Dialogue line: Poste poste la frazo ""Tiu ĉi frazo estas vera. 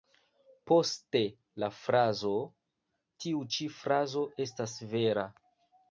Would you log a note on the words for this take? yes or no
yes